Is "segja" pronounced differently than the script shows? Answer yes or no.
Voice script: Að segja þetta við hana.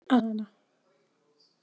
yes